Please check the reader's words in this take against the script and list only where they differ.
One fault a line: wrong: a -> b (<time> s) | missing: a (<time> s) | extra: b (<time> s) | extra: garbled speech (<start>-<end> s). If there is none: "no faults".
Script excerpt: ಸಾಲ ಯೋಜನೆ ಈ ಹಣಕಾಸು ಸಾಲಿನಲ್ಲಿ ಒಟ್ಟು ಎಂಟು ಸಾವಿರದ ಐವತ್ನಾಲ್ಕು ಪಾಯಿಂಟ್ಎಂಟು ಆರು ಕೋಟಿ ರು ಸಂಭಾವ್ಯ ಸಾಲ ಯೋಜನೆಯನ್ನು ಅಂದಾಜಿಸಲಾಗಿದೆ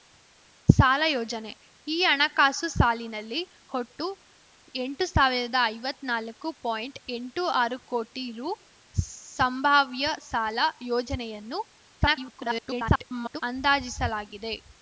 extra: garbled speech (12.0-13.4 s)